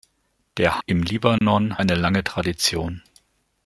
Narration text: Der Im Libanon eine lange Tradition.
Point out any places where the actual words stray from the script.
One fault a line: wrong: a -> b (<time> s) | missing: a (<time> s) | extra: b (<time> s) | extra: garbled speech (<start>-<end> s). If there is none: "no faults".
no faults